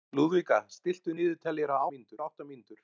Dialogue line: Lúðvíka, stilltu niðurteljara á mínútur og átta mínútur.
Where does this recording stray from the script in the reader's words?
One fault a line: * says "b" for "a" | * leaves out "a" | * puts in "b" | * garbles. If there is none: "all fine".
all fine